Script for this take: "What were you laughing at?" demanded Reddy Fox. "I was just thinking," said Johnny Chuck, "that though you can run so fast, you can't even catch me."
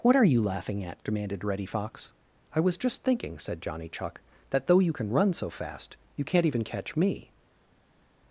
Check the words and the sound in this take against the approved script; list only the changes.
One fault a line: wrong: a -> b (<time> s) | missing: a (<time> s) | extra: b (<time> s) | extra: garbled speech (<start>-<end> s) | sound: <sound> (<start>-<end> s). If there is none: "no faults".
wrong: were -> are (0.1 s)